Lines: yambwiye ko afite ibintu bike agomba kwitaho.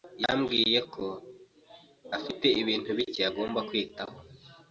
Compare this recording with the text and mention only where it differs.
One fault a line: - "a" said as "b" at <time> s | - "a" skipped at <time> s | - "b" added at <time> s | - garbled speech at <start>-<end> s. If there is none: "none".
none